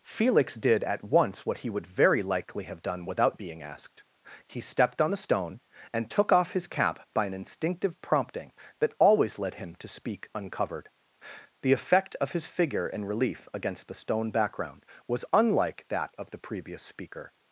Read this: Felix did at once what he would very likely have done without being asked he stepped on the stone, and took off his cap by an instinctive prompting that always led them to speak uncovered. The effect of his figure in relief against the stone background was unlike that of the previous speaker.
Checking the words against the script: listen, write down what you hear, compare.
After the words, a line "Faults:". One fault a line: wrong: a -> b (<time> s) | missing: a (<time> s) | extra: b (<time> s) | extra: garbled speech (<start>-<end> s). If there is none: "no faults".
Felix did at once what he would very likely have done without being asked he stepped on the stone, and took off his cap by an instinctive prompting that always led him to speak uncovered. The effect of his figure in relief against the stone background was unlike that of the previous speaker.
Faults:
wrong: them -> him (9.5 s)